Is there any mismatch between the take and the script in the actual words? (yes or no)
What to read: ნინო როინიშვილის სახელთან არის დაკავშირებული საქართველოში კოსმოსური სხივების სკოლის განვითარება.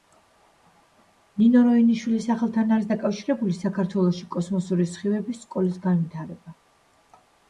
no